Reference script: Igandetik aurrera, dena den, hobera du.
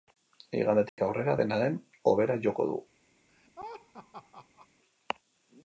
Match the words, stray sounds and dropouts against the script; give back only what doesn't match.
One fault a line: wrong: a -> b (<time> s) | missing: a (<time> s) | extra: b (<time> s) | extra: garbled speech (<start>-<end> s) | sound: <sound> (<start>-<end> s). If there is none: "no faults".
sound: dropout (0.9-1.0 s)
extra: joko (2.5 s)
sound: laugh (3.3-4.7 s)